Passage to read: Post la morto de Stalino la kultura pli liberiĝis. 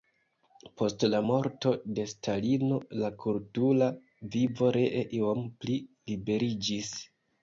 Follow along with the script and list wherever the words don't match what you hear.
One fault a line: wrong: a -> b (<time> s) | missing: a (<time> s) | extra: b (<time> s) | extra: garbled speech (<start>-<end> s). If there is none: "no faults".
extra: vivo ree iom (4.4 s)